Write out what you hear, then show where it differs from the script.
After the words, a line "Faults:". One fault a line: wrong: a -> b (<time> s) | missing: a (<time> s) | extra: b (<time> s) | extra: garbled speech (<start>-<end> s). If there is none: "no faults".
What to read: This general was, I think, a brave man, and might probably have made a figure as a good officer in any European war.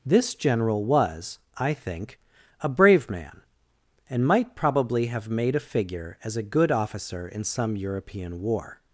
This general was, I think, a brave man, and might probably have made a figure as a good officer in some European war.
Faults:
wrong: any -> some (7.4 s)